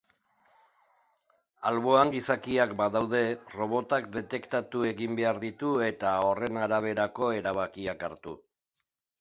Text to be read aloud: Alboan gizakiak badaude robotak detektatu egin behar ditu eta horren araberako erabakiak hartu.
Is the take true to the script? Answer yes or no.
yes